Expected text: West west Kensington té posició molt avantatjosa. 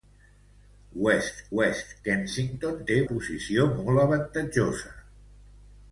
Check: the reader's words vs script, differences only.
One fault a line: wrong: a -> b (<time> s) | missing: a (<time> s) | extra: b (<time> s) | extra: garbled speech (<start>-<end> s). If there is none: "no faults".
no faults